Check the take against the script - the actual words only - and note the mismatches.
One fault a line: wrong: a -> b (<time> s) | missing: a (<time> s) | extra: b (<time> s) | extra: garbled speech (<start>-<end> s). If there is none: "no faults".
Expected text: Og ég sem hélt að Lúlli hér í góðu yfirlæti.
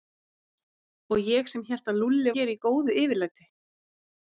no faults